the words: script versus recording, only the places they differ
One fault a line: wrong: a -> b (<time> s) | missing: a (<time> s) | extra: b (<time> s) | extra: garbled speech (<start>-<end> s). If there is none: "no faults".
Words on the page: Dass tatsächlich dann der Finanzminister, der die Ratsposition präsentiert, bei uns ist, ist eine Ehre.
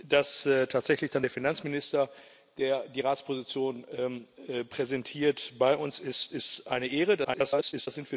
extra: garbled speech (7.2-7.9 s)